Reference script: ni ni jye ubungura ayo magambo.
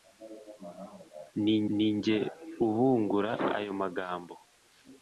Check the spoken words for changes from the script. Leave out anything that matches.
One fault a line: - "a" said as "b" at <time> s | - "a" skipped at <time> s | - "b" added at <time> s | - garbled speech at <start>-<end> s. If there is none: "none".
none